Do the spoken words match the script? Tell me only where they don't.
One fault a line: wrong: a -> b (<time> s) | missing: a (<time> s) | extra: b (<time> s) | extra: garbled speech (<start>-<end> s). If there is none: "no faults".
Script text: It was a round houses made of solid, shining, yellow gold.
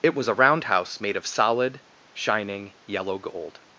wrong: houses -> house (0.6 s)